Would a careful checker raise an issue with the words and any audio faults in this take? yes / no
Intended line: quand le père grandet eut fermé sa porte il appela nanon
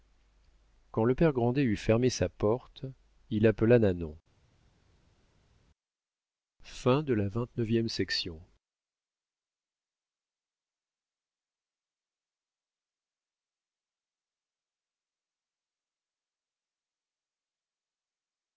no